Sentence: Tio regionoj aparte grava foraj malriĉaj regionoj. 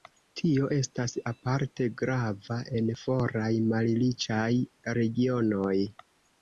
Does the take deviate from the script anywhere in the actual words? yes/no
yes